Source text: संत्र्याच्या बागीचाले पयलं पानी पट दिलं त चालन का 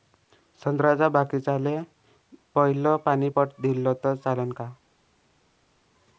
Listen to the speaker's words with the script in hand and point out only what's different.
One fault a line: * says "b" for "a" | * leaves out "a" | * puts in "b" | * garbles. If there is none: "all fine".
all fine